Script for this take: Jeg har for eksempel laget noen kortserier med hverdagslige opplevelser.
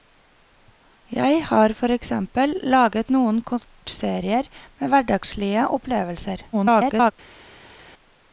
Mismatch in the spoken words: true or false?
true